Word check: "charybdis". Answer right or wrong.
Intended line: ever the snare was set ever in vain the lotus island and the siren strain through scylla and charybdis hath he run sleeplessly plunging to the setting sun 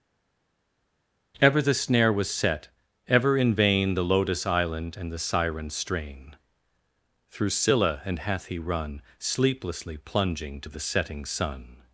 wrong